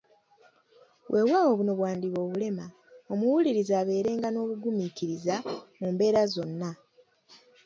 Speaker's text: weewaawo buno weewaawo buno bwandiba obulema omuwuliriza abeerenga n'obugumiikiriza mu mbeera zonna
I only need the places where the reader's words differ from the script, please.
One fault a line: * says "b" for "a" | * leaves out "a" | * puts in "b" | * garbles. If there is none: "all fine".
* leaves out "weewaawo buno"